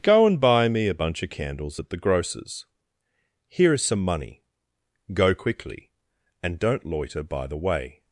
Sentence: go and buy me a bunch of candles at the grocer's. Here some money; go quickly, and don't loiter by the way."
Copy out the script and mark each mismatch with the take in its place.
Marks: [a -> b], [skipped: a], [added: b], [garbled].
go and buy me a bunch of candles at the grocer's. Here [added: is] some money; go quickly, and don't loiter by the way."